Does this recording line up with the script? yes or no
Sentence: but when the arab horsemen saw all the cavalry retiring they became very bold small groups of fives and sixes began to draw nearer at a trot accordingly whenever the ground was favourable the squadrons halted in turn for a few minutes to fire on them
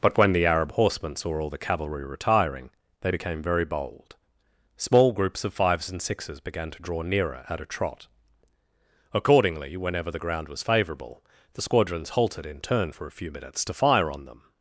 yes